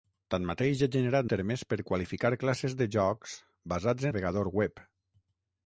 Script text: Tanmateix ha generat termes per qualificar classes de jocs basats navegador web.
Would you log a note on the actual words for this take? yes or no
no